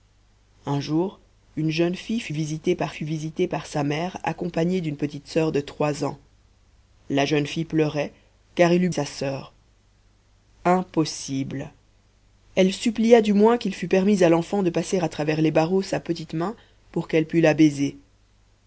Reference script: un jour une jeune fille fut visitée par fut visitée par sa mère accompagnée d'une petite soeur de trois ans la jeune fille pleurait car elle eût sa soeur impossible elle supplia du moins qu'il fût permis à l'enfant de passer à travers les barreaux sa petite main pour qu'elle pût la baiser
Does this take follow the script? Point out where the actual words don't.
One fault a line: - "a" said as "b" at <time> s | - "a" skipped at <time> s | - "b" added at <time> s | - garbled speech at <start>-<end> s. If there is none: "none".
none